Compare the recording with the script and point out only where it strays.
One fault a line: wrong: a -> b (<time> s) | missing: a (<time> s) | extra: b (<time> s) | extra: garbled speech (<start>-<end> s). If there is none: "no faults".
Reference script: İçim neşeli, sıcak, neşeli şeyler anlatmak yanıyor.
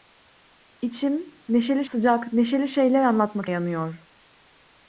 no faults